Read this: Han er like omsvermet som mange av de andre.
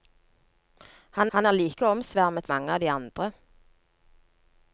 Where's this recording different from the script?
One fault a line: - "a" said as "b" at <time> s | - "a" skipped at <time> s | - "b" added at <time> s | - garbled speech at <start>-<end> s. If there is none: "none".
- "han" added at 1.3 s
- "som" skipped at 2.5 s